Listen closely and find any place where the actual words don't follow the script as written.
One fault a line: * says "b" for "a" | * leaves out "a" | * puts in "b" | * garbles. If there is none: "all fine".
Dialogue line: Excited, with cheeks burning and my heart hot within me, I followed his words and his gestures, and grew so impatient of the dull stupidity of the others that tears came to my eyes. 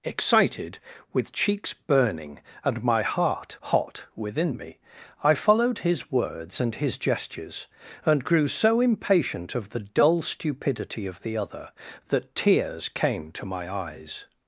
* says "other" for "others"